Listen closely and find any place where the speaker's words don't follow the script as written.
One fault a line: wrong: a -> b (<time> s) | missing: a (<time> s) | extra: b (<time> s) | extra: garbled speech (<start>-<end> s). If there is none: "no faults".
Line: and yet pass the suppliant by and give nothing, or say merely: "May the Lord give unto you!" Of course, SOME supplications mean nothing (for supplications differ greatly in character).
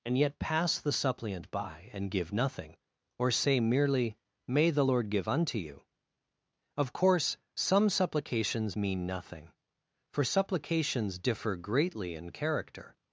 no faults